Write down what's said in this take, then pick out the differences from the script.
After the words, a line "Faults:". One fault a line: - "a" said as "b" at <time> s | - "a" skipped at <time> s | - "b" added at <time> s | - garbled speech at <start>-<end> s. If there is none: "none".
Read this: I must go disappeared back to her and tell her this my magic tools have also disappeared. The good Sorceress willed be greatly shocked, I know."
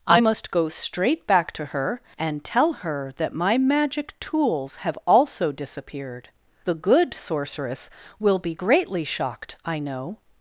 I must go straight back to her and tell her that my magic tools have also disappeared. The good Sorceress will be greatly shocked, I know."
Faults:
- "disappeared" said as "straight" at 0.7 s
- "this" said as "that" at 3.2 s
- "willed" said as "will" at 8.2 s